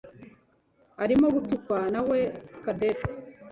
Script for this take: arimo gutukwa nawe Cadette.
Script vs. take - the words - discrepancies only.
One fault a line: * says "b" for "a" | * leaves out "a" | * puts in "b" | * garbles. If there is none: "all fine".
all fine